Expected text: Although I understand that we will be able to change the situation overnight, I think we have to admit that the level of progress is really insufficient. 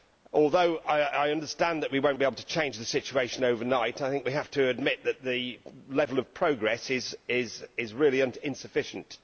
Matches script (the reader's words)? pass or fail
pass